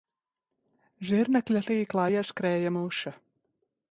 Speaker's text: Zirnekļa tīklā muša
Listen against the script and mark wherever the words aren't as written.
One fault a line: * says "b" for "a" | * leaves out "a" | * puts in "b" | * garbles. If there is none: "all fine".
* puts in "ieskrēja"